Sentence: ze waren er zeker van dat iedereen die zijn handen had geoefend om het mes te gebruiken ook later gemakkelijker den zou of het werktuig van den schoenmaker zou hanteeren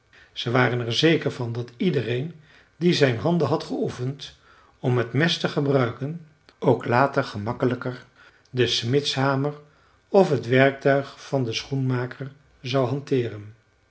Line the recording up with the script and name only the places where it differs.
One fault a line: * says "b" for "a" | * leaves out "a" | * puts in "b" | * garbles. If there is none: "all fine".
* says "smidshamer" for "zou"